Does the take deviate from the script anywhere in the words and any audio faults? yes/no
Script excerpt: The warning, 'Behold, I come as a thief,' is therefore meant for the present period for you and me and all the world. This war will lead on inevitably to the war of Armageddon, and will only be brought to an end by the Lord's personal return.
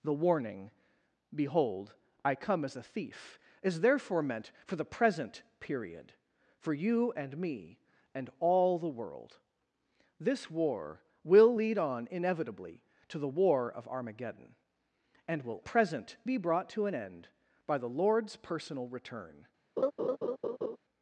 yes